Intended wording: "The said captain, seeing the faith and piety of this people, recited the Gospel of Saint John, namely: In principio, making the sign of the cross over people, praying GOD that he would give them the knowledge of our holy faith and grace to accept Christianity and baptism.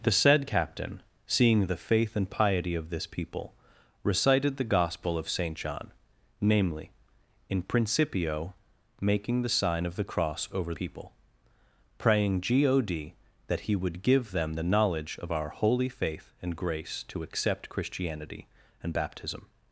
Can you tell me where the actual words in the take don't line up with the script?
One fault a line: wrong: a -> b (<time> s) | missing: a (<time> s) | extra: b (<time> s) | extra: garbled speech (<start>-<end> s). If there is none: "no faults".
no faults